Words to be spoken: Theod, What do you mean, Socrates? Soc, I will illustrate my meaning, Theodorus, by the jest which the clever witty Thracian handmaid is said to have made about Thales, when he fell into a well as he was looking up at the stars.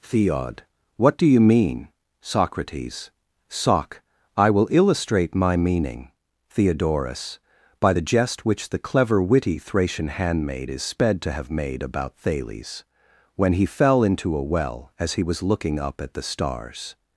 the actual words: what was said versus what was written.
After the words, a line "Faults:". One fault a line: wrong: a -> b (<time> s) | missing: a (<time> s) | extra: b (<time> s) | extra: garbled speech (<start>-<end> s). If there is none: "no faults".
Theod, What do you mean, Socrates? Soc, I will illustrate my meaning, Theodorus, by the jest which the clever witty Thracian handmaid is sped to have made about Thales, when he fell into a well as he was looking up at the stars.
Faults:
wrong: said -> sped (10.8 s)